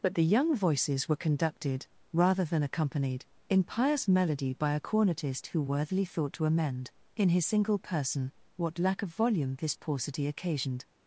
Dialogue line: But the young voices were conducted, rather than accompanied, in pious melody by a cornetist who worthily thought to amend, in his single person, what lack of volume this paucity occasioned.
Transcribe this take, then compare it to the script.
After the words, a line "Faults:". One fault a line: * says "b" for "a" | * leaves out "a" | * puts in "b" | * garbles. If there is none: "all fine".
But the young voices were conducted, rather than accompanied, in pious melody by a cornetist who worthily thought to amend, in his single person, what lack of volume this paucity occasioned.
Faults:
all fine